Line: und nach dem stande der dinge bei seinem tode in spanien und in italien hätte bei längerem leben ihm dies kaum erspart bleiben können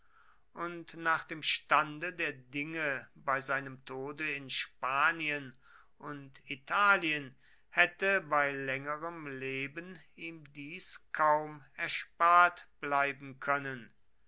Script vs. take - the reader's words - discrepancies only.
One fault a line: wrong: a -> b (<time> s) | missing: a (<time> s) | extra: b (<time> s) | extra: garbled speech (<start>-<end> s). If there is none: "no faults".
missing: in (6.4 s)